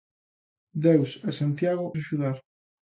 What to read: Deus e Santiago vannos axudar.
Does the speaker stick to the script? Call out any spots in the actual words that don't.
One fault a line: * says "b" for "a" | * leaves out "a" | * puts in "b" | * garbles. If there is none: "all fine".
* leaves out "vannos"